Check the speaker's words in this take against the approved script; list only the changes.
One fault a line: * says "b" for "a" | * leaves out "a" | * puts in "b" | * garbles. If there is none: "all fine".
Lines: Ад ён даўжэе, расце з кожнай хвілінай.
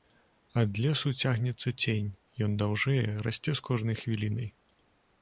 * puts in "лесу цягнецца цень"